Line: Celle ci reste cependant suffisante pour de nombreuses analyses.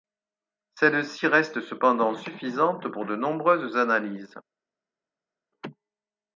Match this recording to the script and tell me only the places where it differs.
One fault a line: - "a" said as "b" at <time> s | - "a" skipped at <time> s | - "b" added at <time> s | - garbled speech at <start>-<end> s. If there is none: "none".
none